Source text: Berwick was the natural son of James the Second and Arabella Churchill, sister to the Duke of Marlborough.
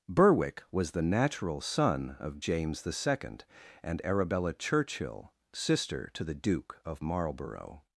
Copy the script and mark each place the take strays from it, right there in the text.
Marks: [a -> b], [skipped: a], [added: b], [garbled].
Berwick was the natural son of James the Second and Arabella Churchill, sister to the Duke of Marlborough.